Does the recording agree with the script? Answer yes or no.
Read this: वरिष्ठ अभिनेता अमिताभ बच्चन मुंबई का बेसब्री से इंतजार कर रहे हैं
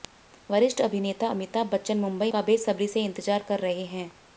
yes